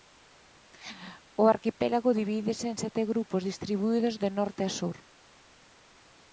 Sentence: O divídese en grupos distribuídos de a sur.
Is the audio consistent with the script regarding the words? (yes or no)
no